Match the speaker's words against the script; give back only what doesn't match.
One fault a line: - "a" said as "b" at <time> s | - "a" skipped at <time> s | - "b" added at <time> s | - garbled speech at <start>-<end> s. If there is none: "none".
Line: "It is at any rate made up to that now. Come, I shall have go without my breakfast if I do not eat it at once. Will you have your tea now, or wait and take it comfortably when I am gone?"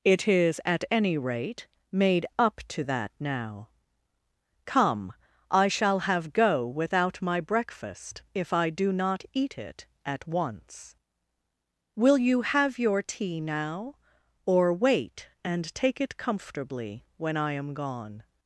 none